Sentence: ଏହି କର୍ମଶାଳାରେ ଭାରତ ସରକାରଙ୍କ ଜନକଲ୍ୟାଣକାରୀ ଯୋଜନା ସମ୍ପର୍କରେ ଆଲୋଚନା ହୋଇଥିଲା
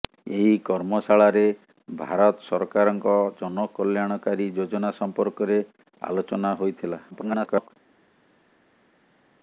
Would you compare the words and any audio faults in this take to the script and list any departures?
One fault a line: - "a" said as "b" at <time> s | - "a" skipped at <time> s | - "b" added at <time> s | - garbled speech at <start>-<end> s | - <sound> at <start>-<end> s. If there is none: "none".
- garbled speech at 7.1-7.7 s